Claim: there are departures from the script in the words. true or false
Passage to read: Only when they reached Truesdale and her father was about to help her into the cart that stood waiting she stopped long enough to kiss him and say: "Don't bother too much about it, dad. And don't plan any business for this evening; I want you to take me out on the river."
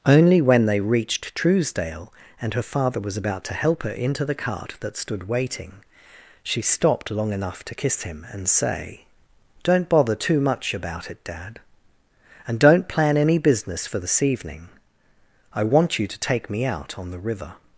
false